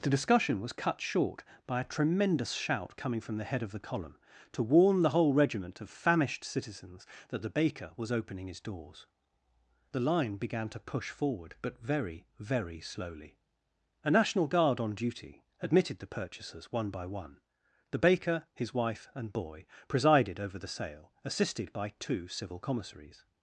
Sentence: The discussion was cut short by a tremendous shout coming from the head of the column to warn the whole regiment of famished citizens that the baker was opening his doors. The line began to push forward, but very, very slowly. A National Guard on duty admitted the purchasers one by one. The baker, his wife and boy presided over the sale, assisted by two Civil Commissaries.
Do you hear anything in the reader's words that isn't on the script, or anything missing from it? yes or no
no